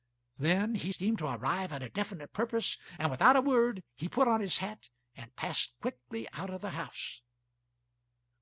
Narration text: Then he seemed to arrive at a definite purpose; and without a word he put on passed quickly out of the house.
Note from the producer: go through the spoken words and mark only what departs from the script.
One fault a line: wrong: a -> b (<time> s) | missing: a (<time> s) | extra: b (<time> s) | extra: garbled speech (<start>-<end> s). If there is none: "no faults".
extra: his hat and (4.4 s)